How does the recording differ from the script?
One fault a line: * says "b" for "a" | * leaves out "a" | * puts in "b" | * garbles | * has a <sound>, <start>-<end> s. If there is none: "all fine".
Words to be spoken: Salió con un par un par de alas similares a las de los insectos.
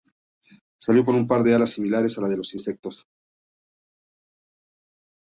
* leaves out "un par"